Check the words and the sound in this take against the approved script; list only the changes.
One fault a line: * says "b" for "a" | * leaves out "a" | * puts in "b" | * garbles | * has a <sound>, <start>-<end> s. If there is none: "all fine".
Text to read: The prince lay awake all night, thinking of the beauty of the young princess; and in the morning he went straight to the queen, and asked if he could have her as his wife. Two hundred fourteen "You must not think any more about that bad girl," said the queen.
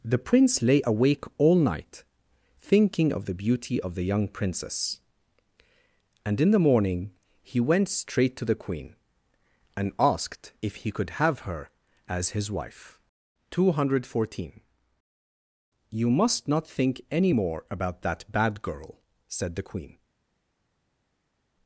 all fine